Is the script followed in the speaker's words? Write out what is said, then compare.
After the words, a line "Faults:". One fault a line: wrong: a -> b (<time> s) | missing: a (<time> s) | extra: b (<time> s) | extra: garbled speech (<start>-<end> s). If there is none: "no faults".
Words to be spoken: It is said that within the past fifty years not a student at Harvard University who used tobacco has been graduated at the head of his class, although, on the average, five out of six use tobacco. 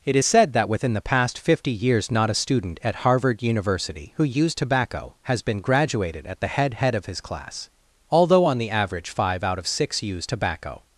It is said that within the past fifty years not a student at Harvard University who used tobacco has been graduated at the head head of his class, although, on the average, five out of six use tobacco.
Faults:
extra: head (6.7 s)